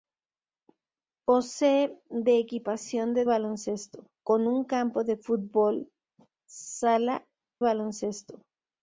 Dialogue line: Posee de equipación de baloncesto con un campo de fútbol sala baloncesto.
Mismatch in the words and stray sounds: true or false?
false